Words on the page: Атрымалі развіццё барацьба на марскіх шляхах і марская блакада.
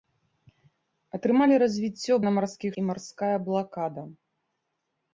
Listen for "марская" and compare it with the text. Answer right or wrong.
right